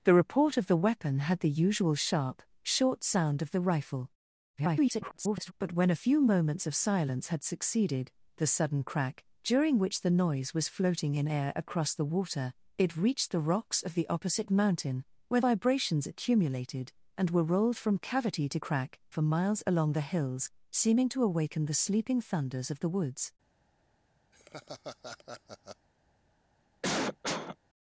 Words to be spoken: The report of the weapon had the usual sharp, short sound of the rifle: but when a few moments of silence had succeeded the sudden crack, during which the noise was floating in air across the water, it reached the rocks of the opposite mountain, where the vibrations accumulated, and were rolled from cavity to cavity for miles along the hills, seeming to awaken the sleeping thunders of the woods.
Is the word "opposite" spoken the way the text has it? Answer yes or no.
yes